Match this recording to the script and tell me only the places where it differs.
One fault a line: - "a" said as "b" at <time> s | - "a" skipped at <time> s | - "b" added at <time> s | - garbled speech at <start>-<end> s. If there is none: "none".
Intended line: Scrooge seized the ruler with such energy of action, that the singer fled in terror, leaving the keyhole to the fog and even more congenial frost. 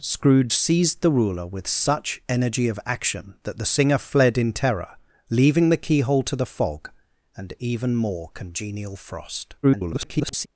- garbled speech at 9.6-10.5 s